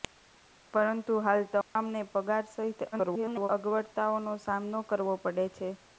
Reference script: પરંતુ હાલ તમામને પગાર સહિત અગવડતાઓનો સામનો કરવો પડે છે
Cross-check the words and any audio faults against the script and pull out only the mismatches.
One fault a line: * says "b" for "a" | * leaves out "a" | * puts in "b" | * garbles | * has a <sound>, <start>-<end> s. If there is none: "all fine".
* has a dropout, 1.6-1.8 s
* garbles